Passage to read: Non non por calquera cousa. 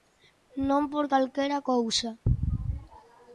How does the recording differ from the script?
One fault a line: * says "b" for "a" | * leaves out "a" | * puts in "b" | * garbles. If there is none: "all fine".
* leaves out "non"